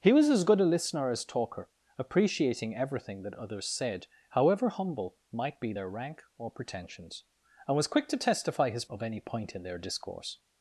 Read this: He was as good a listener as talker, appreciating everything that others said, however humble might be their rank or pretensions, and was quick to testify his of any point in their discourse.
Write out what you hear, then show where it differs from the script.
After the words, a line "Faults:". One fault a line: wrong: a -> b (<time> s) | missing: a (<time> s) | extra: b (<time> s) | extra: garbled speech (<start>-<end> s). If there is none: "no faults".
He was as good a listener as talker, appreciating everything that others said, however humble might be their rank or pretensions, and was quick to testify his of any point in their discourse.
Faults:
no faults